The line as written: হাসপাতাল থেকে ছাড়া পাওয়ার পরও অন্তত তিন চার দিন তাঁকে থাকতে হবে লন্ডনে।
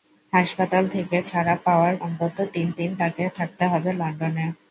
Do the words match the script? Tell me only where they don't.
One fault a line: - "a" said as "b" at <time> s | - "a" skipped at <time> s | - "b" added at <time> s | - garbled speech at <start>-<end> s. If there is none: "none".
- "পরও" skipped at 1.9 s
- "চার" skipped at 2.7 s